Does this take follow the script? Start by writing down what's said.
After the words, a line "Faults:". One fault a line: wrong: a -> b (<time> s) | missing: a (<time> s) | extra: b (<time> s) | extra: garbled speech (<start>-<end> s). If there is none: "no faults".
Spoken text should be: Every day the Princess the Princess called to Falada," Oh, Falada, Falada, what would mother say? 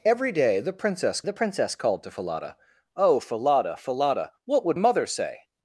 Every day the Princess the Princess called to Falada," Oh, Falada, Falada, what would mother say?
Faults:
no faults